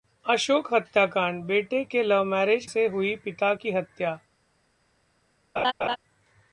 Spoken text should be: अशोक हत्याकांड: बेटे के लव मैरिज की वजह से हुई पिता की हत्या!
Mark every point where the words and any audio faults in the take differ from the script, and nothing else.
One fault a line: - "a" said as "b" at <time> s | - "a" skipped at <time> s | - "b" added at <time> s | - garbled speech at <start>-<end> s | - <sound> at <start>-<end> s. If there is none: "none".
- "की वजह" skipped at 2.6 s
- laugh at 5.6-6.0 s